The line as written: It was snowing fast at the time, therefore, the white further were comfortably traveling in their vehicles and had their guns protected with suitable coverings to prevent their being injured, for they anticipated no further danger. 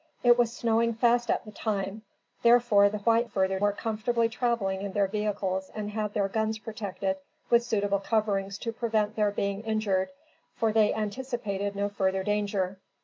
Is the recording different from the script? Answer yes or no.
no